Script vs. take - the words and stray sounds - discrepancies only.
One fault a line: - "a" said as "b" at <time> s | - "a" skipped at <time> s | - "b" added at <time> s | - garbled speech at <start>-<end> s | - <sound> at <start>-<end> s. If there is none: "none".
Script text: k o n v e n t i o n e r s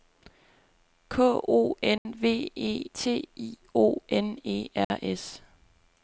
- dropout at 2.0-2.1 s
- "n" skipped at 2.9 s
- dropout at 4.8-4.9 s